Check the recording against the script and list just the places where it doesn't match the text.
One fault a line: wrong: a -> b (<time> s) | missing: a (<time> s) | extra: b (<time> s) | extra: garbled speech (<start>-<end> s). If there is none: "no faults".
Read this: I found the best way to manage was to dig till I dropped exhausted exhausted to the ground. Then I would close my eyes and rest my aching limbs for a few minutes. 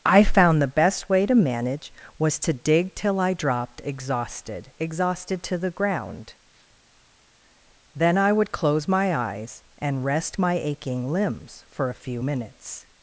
no faults